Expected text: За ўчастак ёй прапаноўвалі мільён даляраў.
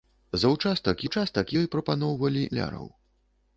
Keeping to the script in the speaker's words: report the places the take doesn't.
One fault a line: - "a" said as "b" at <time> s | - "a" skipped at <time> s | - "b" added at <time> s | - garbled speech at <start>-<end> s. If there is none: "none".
- "ўчастак" added at 1.0 s
- "мільён" skipped at 2.5 s